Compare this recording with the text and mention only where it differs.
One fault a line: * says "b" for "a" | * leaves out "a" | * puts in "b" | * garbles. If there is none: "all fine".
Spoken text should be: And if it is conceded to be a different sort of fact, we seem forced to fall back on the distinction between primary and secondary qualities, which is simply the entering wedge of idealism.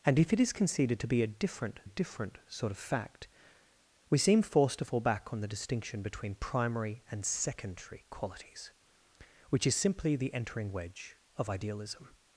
* puts in "different"